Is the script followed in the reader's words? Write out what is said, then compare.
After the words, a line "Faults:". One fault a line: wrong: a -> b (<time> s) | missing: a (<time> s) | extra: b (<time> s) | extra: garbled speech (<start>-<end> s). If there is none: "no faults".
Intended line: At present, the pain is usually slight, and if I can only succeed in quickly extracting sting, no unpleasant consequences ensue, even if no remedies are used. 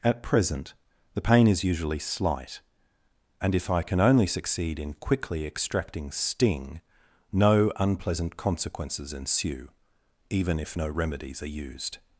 At present, the pain is usually slight, and if I can only succeed in quickly extracting sting, no unpleasant consequences ensue, even if no remedies are used.
Faults:
no faults